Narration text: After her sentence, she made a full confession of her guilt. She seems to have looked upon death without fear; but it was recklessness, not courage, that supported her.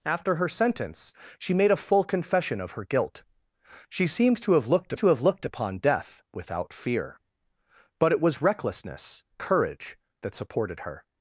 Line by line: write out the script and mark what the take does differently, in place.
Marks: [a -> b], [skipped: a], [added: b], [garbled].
After her sentence, she made a full confession of her guilt. She seems to have looked [added: to have looked] upon death without fear; but it was recklessness, [skipped: not] courage, that supported her.